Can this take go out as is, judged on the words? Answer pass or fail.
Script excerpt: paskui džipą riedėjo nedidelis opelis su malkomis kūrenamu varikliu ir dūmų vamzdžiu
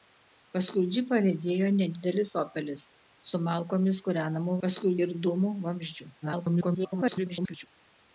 fail